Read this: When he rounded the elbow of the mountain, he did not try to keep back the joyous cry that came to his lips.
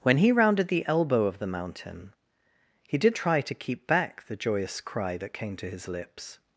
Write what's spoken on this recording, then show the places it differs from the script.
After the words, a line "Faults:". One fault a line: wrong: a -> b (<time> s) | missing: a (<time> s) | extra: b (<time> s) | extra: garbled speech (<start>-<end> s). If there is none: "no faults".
When he rounded the elbow of the mountain, he did try to keep back the joyous cry that came to his lips.
Faults:
missing: not (3.1 s)